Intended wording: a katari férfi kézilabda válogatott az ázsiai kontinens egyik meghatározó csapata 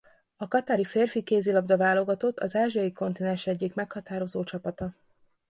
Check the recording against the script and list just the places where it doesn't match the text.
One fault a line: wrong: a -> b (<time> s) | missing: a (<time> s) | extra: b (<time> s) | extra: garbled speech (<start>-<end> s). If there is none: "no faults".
no faults